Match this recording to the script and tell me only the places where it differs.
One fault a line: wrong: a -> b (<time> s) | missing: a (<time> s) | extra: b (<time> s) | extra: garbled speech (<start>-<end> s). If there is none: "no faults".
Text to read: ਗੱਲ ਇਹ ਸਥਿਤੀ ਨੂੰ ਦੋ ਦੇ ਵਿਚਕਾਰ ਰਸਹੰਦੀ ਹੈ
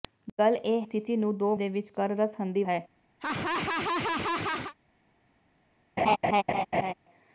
no faults